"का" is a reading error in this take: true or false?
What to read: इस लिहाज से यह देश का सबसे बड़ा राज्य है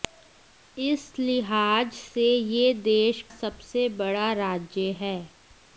true